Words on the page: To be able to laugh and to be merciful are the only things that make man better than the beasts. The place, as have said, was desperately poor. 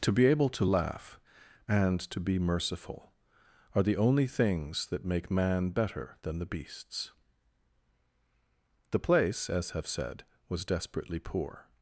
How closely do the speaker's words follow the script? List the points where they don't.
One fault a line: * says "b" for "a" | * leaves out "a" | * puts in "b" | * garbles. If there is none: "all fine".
all fine